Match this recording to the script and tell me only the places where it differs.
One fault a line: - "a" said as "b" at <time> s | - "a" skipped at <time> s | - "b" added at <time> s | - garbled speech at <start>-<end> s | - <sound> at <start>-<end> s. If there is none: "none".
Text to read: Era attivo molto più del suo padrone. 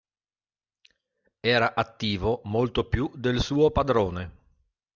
none